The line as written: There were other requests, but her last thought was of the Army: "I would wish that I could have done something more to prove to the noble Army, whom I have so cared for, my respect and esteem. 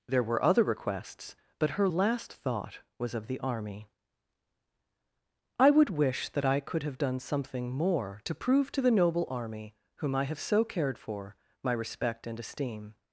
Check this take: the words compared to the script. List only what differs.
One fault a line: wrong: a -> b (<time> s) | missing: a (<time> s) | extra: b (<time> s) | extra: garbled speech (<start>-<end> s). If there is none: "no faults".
no faults